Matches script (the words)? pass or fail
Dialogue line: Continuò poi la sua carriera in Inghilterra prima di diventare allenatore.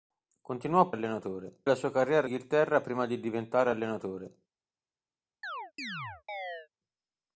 fail